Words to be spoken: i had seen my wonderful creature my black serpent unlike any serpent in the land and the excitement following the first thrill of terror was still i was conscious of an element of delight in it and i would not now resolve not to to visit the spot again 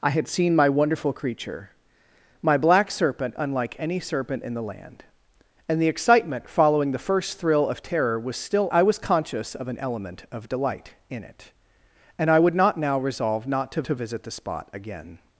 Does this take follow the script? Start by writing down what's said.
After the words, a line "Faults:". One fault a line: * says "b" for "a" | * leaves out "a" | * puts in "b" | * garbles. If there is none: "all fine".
i had seen my wonderful creature my black serpent unlike any serpent in the land and the excitement following the first thrill of terror was still i was conscious of an element of delight in it and i would not now resolve not to to visit the spot again
Faults:
all fine